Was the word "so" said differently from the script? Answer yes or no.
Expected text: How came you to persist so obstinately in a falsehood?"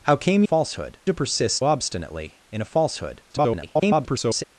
yes